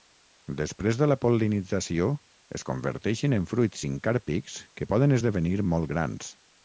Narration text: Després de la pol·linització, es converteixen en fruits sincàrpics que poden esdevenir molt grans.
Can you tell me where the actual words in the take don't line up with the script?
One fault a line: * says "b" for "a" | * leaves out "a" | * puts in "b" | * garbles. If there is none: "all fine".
all fine